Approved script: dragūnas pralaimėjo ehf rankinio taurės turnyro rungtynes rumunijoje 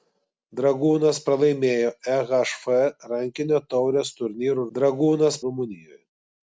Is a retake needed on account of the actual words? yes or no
yes